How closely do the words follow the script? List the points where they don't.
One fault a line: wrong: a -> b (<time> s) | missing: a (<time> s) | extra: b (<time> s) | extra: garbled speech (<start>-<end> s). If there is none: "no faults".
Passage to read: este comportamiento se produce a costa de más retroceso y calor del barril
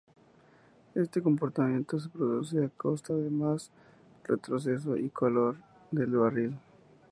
no faults